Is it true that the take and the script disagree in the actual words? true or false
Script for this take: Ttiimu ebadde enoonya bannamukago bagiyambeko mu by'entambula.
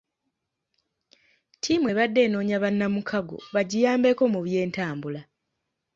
false